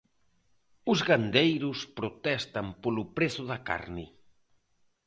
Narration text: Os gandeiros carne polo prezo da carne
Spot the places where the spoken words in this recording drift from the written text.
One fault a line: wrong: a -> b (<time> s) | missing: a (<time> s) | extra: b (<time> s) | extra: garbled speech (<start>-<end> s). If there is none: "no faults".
wrong: carne -> protestan (2.0 s)